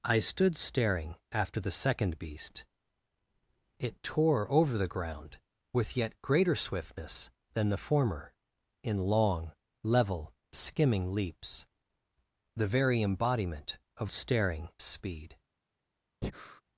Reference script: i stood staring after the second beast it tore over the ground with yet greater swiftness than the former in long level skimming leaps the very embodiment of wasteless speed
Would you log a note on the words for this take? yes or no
yes